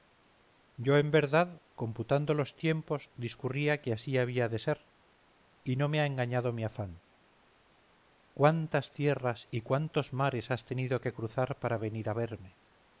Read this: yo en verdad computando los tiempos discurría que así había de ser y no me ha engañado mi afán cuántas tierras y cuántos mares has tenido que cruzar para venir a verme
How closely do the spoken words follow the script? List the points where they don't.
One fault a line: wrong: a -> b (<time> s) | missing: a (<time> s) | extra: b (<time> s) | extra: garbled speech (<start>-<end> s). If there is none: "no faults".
no faults